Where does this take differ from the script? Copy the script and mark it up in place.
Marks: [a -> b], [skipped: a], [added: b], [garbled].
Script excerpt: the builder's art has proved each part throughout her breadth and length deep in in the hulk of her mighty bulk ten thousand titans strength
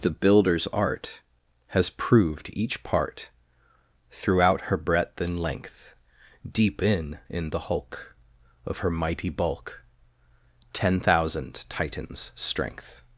the builder's art has proved each part throughout her breadth and length deep in in the hulk of her mighty bulk ten thousand titans strength